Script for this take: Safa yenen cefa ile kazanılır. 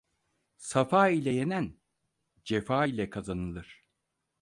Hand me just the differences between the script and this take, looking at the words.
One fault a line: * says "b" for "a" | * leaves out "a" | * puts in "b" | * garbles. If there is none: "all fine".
* puts in "ile"